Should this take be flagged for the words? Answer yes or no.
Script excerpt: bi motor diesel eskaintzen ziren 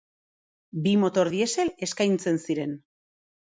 no